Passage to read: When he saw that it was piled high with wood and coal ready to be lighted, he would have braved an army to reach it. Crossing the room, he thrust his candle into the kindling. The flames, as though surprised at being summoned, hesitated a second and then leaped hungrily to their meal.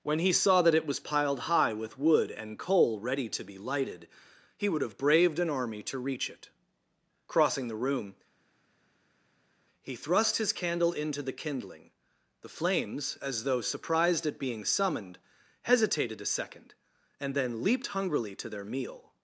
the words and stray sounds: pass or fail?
pass